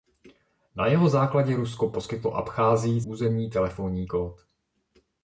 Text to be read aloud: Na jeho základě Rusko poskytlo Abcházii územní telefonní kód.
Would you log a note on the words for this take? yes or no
no